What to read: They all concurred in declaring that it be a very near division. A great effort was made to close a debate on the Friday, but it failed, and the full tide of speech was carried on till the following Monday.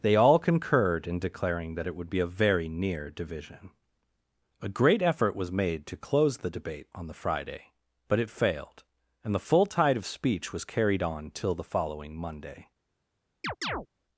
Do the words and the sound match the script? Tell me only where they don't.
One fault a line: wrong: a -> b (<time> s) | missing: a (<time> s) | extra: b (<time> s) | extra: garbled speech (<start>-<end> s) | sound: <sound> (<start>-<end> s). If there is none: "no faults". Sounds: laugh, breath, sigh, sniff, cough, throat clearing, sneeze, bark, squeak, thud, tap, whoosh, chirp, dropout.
extra: would (1.9 s)
wrong: a -> the (6.4 s)
sound: chirp (13.4-13.9 s)